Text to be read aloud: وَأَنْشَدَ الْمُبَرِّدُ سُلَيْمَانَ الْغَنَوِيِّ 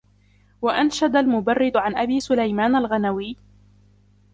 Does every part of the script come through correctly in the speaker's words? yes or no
no